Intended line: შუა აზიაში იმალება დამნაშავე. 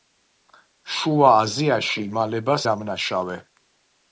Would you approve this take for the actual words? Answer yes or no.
yes